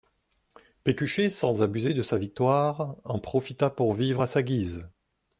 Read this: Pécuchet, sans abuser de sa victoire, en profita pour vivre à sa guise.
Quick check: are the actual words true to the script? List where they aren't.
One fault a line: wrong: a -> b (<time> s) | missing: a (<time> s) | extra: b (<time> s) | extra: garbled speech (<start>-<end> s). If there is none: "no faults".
no faults